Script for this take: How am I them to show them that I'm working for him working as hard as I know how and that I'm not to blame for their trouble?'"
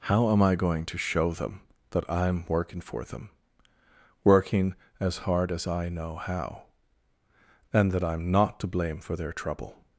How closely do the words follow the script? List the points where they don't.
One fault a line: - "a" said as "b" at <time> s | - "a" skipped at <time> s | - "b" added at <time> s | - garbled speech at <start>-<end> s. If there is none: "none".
- "them" said as "going" at 0.6 s
- "him" said as "them" at 3.0 s